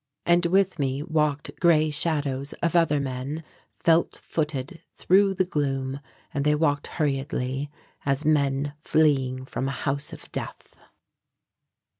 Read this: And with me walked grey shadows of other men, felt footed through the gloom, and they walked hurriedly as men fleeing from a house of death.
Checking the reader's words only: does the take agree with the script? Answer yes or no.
yes